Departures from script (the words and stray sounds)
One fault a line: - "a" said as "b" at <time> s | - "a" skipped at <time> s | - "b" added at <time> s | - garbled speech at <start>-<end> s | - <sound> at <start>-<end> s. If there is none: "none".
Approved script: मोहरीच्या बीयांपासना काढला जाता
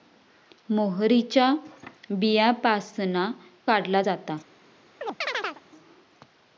- chirp at 5.0-5.6 s